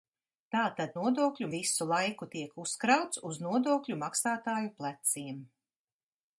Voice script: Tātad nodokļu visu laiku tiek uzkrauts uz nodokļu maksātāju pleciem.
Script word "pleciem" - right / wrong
right